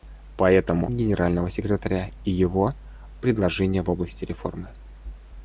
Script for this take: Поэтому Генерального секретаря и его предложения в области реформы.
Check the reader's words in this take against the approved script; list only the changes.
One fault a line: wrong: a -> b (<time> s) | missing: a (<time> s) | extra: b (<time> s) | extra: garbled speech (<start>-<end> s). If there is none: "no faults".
no faults